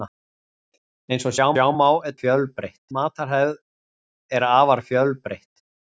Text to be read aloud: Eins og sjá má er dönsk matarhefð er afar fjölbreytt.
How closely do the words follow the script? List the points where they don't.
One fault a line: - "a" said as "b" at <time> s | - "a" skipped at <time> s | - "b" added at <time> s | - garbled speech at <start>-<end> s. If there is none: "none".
- "sjá" added at 1.5 s
- "dönsk" said as "fjölbreytt" at 2.2 s